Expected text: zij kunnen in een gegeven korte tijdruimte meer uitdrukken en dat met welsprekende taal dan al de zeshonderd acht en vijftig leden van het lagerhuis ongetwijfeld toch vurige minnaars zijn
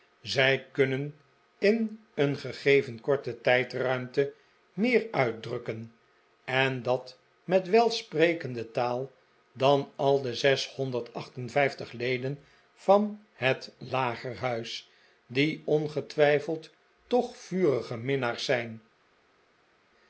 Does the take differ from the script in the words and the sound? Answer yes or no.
yes